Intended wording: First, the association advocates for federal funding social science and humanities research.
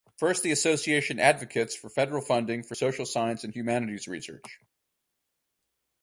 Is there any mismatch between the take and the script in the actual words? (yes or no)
yes